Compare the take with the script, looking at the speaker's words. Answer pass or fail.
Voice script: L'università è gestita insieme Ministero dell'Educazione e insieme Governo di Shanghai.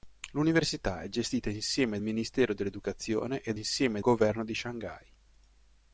pass